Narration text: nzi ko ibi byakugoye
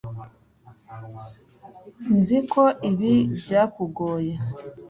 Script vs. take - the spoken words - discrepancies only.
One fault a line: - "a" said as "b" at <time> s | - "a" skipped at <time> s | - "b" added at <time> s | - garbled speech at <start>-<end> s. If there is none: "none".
none